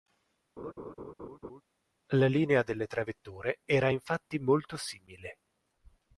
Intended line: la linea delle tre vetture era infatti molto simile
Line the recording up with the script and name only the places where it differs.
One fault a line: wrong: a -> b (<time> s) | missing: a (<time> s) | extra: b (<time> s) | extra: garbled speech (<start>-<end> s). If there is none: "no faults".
no faults